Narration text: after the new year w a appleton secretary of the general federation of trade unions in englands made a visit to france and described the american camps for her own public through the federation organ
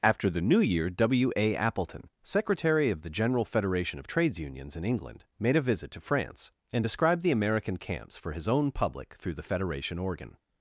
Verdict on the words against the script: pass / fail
fail